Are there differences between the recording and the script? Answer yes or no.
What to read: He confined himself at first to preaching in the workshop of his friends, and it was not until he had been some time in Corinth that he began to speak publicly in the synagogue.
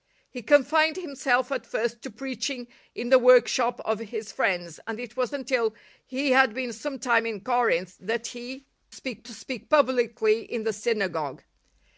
yes